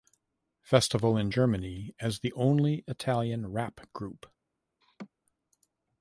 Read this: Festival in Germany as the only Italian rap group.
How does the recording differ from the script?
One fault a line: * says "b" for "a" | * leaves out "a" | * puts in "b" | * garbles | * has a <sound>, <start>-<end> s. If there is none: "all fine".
* has a laugh, 4.8-5.1 s